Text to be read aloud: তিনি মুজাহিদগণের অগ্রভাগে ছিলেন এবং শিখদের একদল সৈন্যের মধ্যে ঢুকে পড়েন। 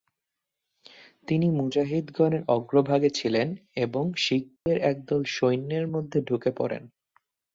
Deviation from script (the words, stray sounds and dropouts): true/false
true